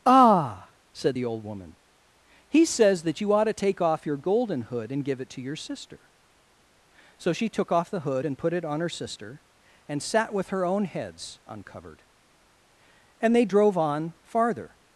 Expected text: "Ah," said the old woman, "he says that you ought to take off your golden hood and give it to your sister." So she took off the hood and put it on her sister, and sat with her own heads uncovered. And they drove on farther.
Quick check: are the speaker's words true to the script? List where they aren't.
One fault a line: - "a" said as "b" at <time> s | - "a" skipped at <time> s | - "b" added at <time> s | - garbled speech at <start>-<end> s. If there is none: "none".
none